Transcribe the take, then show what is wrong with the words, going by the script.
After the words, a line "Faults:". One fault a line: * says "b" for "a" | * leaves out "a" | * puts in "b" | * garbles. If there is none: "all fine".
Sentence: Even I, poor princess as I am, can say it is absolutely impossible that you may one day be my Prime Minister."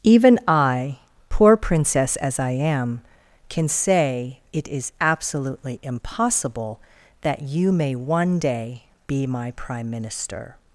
Even I, poor princess as I am, can say it is absolutely impossible that you may one day be my Prime Minister."
Faults:
all fine